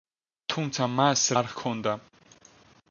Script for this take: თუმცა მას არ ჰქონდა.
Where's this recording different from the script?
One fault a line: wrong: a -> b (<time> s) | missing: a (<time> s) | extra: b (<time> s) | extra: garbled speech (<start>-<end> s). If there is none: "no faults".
no faults